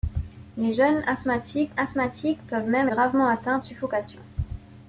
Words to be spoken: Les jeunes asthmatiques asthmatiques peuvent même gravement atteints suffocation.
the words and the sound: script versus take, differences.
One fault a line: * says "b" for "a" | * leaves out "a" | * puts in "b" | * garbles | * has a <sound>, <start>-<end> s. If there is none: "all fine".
all fine